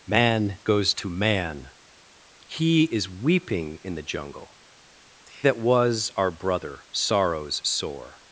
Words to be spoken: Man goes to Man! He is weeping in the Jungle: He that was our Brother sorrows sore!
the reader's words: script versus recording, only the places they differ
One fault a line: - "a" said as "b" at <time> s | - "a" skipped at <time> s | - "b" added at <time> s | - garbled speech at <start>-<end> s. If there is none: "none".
- "He" skipped at 4.6 s